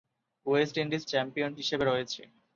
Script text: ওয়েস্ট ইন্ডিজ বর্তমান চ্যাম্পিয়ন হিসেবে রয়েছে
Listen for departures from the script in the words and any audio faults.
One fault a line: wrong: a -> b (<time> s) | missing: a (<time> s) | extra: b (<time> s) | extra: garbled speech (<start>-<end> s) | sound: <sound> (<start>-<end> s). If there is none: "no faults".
missing: বর্তমান (1.0 s)